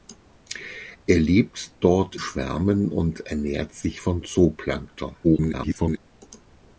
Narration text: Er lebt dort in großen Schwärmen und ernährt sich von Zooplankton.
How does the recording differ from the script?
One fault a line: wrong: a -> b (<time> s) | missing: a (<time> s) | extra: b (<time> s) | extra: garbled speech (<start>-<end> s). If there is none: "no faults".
missing: in großen (2.1 s)
extra: garbled speech (5.2-6.0 s)